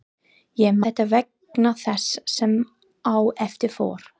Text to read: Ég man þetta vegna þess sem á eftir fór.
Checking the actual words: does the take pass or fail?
fail